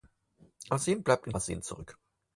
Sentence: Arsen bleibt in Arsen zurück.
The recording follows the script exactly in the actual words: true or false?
true